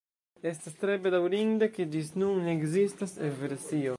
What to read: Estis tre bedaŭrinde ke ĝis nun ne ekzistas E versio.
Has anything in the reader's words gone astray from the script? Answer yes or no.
yes